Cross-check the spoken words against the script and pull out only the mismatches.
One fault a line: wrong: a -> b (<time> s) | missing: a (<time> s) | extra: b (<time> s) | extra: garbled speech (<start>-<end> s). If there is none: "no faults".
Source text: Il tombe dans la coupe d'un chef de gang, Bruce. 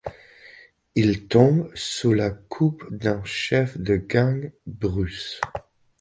wrong: dans -> sous (1.7 s)